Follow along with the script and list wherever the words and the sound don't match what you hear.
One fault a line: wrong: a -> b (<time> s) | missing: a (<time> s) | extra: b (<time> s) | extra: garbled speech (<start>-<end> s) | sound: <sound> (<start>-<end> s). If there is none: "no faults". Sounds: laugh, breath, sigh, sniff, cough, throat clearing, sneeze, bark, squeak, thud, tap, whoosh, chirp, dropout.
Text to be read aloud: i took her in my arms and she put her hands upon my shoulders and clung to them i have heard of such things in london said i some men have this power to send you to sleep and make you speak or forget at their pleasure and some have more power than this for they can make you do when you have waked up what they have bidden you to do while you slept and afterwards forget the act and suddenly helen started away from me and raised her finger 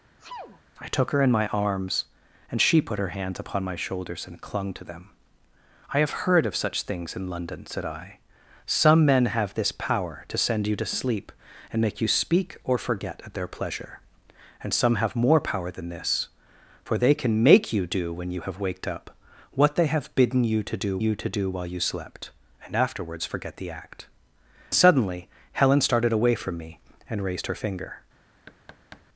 sound: sneeze (0.2-0.6 s)
extra: you to do (21.0 s)
missing: and (24.1 s)
sound: thud (28.5-29.1 s)